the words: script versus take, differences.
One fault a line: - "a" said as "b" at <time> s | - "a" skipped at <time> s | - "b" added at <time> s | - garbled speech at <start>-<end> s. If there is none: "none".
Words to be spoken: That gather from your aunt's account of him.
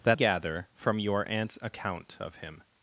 none